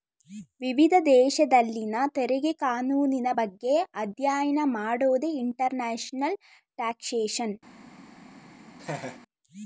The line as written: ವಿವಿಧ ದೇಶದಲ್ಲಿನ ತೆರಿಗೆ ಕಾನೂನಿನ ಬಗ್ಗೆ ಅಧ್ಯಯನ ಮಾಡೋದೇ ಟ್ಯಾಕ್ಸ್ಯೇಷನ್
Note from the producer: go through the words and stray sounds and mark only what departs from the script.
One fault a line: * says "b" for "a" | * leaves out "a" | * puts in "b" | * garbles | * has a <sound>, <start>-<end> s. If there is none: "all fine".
* puts in "ಇಂಟರ್ನ್ಯಾಷನಲ್"
* has a laugh, 8.8-9.2 s